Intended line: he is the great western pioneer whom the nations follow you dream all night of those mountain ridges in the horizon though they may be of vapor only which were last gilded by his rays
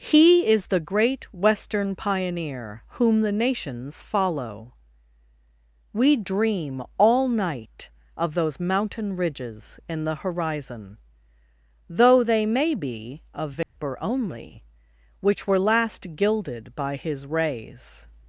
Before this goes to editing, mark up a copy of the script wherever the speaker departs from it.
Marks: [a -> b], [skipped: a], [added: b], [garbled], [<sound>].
he is the great western pioneer whom the nations follow [you -> we] dream all night of those mountain ridges in the horizon though they may be of vapor [dropout] only which were last gilded by his rays